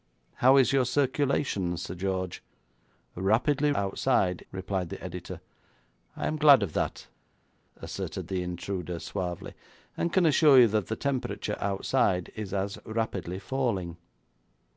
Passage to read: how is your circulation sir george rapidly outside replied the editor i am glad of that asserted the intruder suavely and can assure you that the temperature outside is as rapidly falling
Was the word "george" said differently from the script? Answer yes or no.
no